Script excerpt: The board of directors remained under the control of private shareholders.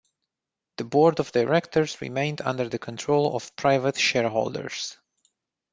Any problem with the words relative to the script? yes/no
no